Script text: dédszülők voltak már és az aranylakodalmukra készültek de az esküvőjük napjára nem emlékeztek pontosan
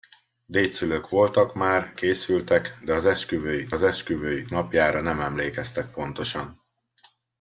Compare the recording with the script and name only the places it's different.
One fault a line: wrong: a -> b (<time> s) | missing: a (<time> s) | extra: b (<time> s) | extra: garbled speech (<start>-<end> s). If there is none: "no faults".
wrong: és -> készültek de (1.9 s)
wrong: aranylakodalmukra készültek de -> esküvőjük (3.0 s)